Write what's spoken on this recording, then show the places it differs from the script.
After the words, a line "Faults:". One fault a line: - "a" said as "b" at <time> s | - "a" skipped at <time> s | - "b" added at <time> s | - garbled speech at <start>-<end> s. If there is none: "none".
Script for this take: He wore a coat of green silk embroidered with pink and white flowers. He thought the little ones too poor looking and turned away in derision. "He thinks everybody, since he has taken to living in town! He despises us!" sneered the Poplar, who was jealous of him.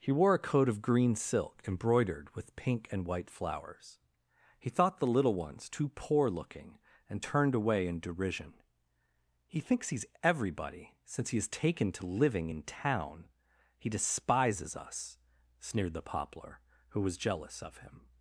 He wore a coat of green silk embroidered with pink and white flowers. He thought the little ones too poor looking and turned away in derision. "He thinks he's everybody, since he has taken to living in town! He despises us!" sneered the Poplar, who was jealous of him.
Faults:
- "he's" added at 9.9 s